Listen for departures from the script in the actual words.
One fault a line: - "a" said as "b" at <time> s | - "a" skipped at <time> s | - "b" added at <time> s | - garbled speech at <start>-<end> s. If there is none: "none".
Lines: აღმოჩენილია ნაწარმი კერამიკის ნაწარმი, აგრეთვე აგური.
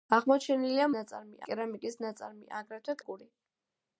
none